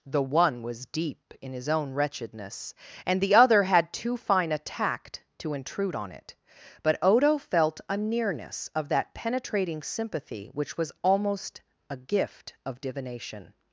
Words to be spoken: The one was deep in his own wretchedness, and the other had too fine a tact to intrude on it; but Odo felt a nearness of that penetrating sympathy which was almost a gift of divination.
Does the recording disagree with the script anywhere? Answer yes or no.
no